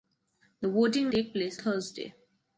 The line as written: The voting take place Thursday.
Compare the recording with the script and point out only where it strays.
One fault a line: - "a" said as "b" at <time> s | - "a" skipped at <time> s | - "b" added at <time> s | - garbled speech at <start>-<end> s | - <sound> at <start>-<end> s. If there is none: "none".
none